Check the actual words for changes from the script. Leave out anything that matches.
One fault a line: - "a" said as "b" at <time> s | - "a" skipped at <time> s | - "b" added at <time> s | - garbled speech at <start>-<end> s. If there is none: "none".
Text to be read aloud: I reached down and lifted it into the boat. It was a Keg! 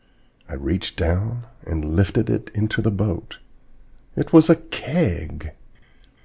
none